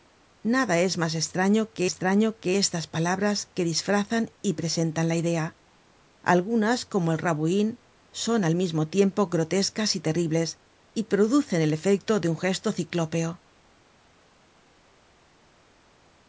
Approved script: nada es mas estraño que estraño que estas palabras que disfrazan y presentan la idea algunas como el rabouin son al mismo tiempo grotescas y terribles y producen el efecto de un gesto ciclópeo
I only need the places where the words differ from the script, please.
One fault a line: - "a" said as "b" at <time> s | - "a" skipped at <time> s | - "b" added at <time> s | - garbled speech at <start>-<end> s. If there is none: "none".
none